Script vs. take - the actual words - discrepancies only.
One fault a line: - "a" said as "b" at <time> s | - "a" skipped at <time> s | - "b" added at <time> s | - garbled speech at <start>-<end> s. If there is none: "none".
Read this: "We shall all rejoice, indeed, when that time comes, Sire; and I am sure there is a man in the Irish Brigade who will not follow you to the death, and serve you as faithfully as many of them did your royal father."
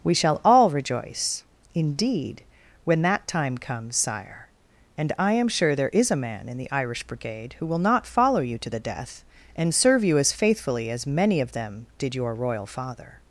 none